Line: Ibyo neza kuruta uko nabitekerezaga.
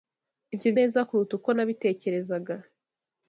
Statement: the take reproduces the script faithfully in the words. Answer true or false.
true